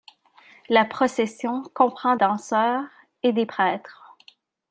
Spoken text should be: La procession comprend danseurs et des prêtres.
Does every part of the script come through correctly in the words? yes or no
yes